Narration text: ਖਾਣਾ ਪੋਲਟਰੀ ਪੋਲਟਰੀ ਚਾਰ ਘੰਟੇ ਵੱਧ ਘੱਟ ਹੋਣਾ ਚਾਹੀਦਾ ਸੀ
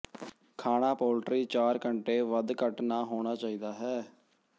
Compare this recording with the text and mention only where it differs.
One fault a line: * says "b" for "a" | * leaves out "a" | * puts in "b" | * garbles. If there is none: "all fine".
* leaves out "ਪੋਲਟਰੀ"
* puts in "ਨਾ"
* says "ਹੈ" for "ਸੀ"